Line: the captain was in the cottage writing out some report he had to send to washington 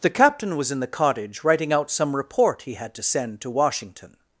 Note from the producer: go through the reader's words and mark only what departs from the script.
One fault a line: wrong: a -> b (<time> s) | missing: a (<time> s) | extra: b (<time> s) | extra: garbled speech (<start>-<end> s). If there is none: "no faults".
no faults